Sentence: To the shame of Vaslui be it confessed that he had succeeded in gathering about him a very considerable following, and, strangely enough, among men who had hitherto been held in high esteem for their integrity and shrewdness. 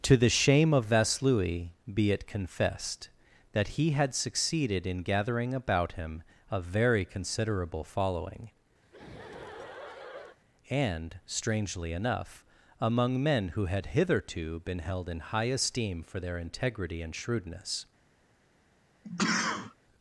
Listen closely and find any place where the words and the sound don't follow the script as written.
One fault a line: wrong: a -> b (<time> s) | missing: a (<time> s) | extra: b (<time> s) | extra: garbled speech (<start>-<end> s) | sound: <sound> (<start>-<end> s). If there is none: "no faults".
sound: laugh (8.8-10.4 s)
sound: sneeze (19.0-19.7 s)